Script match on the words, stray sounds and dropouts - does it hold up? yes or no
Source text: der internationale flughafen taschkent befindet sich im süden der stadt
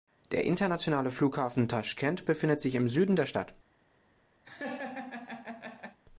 no